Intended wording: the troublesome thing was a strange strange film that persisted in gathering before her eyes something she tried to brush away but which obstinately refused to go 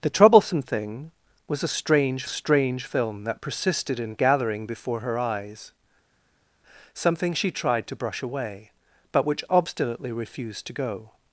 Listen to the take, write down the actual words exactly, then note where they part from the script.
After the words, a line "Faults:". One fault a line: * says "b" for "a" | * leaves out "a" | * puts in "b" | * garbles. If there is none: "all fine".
the troublesome thing was a strange strange film that persisted in gathering before her eyes something she tried to brush away but which obstinately refused to go
Faults:
all fine